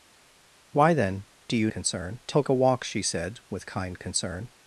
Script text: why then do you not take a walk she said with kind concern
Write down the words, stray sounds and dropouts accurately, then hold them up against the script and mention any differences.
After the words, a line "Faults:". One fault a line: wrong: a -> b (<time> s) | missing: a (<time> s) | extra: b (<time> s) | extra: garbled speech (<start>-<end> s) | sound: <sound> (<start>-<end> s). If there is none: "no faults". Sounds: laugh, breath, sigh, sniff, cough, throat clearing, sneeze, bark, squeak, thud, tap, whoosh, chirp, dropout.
why then do you concern take a walk she said with kind concern
Faults:
wrong: not -> concern (1.7 s)